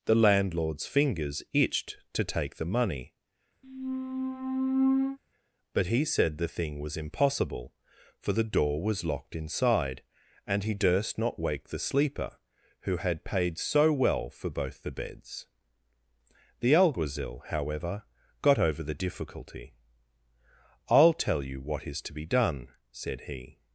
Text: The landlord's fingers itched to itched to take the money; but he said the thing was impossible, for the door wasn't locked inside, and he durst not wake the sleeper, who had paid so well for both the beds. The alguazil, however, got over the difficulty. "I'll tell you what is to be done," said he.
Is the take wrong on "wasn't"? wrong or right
wrong